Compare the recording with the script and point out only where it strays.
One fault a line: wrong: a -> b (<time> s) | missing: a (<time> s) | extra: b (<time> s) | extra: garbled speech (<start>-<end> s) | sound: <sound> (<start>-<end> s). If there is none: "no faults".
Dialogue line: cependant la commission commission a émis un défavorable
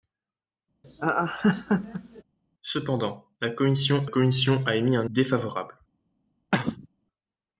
sound: laugh (0.8-2.2 s)
sound: cough (6.5-6.9 s)